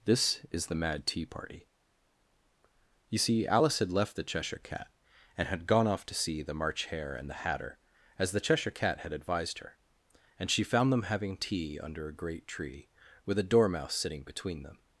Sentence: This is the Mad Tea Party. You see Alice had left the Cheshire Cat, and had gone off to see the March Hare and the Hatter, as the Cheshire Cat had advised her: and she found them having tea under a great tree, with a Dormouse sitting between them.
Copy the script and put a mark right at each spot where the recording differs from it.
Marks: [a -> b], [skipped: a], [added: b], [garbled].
This is the Mad Tea Party. You see Alice had left the Cheshire Cat, and had gone off to see the March Hare and the Hatter, as the Cheshire Cat had advised her: and she found them having tea under a great tree, with a Dormouse sitting between them.